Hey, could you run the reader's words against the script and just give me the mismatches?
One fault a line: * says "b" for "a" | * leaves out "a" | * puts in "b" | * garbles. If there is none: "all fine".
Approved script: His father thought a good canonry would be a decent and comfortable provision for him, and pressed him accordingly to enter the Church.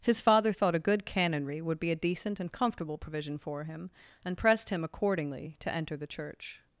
all fine